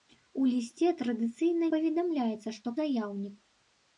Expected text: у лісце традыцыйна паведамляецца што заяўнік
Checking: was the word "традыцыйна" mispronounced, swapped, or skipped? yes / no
no